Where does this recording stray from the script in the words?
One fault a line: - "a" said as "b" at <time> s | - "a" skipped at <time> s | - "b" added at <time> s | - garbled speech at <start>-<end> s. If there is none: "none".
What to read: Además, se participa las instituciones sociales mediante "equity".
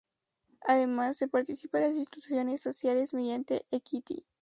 none